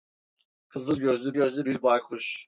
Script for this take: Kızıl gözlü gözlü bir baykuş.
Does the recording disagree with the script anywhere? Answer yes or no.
no